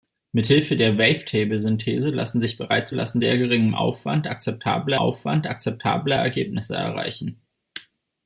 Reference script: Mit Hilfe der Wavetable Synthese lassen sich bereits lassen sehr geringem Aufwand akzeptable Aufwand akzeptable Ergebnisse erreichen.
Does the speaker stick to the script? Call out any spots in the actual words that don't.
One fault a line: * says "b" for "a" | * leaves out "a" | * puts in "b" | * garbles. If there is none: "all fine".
all fine